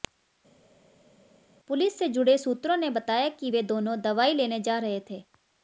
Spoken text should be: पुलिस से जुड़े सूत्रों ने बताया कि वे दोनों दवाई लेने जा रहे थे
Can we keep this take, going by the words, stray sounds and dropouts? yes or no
yes